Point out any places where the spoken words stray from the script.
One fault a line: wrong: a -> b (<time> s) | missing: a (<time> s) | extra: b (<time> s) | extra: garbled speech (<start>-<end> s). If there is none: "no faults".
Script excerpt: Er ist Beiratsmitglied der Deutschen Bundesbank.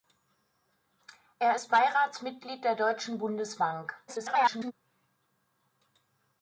extra: garbled speech (4.1-4.7 s)